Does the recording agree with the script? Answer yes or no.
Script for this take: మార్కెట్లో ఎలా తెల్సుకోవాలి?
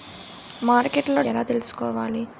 yes